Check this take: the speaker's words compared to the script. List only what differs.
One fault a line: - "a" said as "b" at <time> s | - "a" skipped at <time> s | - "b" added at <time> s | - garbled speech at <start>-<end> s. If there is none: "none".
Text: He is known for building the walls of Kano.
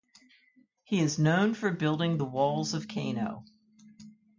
none